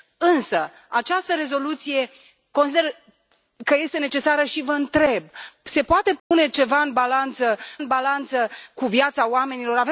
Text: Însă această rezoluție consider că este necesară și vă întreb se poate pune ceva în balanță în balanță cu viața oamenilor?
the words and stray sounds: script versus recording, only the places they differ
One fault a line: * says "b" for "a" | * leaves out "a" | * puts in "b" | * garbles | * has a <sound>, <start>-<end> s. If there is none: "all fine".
* has a dropout, 6.2-6.3 s